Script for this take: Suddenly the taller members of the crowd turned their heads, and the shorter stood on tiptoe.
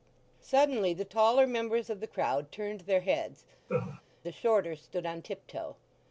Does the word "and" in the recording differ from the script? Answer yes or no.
yes